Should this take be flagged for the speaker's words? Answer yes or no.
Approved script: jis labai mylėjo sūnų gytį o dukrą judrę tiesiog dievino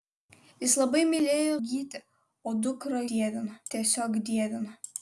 yes